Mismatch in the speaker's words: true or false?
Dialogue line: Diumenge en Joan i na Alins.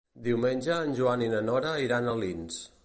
true